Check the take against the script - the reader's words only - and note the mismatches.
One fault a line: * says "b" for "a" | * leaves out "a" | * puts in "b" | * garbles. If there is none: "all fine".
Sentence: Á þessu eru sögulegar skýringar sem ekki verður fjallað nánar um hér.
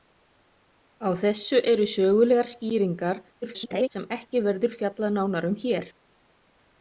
* garbles